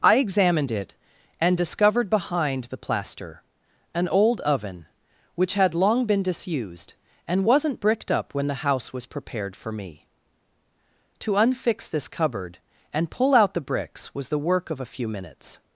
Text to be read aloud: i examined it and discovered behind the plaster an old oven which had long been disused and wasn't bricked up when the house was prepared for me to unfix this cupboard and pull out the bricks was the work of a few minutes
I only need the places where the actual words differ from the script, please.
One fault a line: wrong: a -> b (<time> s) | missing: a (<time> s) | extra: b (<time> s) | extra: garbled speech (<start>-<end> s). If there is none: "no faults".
no faults